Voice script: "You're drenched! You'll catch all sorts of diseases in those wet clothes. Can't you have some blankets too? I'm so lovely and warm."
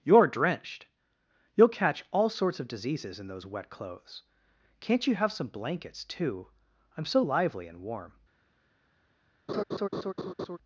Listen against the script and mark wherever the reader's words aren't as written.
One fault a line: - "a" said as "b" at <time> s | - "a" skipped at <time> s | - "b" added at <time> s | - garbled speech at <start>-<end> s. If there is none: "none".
- "lovely" said as "lively" at 7.2 s